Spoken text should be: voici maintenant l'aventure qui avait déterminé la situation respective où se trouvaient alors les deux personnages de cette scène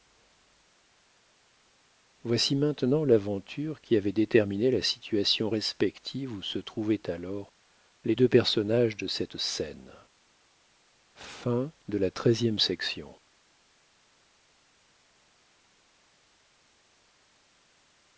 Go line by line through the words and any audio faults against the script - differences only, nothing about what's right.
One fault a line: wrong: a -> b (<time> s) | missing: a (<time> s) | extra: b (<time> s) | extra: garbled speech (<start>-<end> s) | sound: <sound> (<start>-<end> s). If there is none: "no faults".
no faults